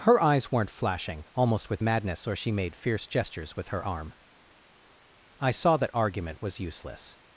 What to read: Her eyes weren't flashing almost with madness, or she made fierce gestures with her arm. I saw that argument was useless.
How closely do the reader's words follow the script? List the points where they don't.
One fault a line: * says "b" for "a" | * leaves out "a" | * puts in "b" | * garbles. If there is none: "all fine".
all fine